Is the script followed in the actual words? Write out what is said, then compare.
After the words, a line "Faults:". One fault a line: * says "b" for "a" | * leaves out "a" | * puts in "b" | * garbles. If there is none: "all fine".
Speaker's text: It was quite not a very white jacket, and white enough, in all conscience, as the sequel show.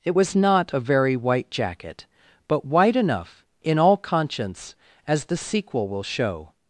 It was not a very white jacket, but white enough, in all conscience, as the sequel will show.
Faults:
* leaves out "quite"
* says "but" for "and"
* puts in "will"